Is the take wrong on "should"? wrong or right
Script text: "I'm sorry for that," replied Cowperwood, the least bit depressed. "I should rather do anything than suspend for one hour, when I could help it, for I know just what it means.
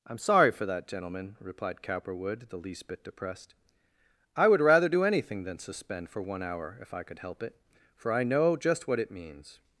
wrong